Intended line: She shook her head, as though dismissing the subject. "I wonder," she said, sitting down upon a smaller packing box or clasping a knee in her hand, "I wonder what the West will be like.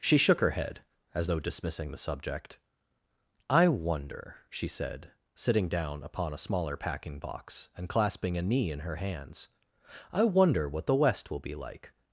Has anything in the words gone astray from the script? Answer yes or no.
yes